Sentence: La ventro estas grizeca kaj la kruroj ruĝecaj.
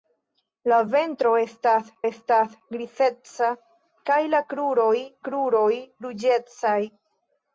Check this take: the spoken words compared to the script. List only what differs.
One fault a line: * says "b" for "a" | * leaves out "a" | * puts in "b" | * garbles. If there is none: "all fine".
* puts in "estas"
* puts in "kruroj"